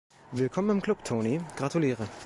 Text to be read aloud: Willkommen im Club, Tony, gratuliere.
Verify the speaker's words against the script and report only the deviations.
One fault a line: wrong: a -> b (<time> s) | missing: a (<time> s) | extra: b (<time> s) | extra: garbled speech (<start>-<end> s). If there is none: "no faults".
no faults